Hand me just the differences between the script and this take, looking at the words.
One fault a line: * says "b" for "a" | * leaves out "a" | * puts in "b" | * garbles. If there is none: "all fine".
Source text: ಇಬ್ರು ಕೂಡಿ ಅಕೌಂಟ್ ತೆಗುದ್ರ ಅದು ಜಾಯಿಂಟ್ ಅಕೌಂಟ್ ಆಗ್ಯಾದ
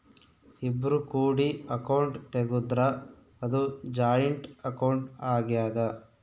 all fine